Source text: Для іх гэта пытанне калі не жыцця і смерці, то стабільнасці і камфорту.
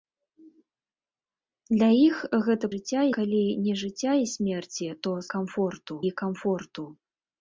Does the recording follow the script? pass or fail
fail